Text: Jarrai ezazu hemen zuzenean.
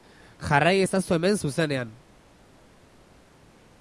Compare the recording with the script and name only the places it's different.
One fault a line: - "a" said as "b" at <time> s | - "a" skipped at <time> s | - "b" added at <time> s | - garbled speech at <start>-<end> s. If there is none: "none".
none